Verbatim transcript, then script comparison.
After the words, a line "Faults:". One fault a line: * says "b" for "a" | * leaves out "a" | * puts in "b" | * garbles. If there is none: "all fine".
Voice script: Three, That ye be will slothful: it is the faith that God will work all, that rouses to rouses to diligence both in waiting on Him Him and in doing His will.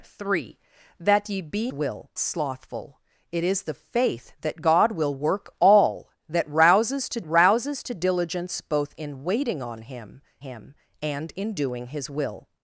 Three, That ye be will slothful: it is the faith that God will work all, that rouses to rouses to diligence both in waiting on Him Him and in doing His will.
Faults:
all fine